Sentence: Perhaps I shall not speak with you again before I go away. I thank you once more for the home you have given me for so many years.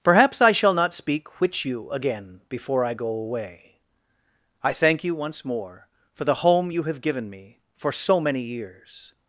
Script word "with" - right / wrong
wrong